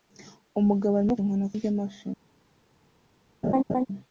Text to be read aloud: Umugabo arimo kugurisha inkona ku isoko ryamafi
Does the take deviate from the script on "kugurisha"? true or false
true